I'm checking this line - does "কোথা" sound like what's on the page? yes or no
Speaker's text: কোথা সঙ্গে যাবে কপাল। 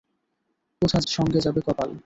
yes